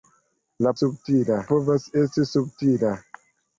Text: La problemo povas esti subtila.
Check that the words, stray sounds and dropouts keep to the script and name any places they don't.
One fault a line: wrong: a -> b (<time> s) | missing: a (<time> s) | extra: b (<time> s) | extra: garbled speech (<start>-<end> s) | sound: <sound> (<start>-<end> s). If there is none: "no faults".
wrong: problemo -> subtila (0.8 s)